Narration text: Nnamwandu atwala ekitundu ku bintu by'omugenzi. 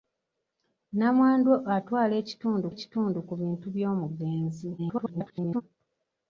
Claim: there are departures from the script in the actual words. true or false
true